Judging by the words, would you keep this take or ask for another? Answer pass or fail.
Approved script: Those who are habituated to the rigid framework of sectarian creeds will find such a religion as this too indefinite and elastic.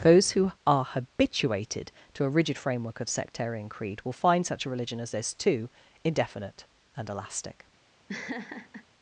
fail